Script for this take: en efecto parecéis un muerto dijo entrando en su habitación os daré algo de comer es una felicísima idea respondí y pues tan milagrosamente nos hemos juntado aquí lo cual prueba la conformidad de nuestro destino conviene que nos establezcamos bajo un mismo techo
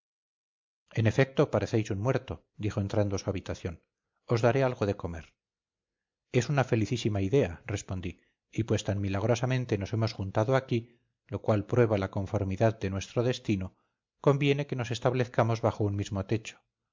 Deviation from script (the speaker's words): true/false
false